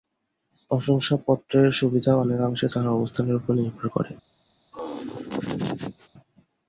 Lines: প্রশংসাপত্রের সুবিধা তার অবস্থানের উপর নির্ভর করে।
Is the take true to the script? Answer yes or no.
no